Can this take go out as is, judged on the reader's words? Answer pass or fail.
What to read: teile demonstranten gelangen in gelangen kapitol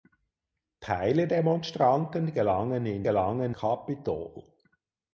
pass